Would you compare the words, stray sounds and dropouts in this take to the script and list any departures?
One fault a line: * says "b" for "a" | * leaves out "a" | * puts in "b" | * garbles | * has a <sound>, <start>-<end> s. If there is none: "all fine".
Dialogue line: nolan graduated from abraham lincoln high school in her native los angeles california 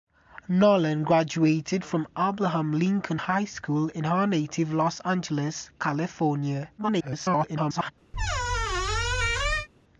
* garbles
* has a squeak, 8.1-9.7 s